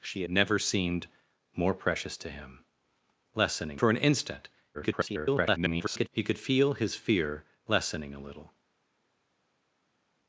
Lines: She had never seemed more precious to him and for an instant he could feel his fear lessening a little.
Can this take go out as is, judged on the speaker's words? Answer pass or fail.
fail